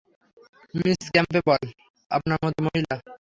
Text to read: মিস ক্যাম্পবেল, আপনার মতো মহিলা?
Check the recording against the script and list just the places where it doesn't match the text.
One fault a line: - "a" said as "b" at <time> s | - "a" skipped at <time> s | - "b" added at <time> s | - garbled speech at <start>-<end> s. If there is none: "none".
none